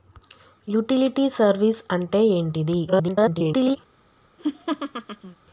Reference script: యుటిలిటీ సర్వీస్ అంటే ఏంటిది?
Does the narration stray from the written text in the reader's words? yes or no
yes